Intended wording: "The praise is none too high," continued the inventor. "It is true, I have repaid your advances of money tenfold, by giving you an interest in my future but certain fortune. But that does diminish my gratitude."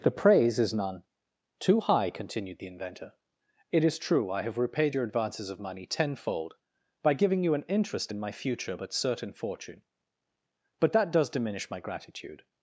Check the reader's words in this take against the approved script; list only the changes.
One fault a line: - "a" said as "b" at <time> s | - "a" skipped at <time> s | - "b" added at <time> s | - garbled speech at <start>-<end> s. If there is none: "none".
none